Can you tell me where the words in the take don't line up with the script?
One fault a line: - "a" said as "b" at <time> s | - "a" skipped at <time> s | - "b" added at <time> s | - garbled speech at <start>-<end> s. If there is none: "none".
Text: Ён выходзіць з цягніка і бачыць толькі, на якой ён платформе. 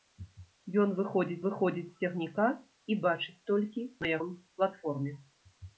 - "выходзіць" added at 1.5 s
- "якой" skipped at 4.2 s